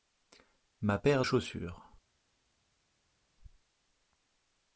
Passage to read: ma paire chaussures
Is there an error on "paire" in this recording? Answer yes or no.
no